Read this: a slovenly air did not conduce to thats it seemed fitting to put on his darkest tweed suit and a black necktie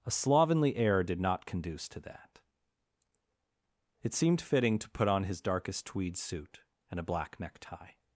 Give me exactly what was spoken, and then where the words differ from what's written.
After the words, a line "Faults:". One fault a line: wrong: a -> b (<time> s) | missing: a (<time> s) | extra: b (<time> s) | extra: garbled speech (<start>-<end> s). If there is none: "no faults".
a slovenly air did not conduce to that it seemed fitting to put on his darkest tweed suit and a black necktie
Faults:
wrong: thats -> that (2.0 s)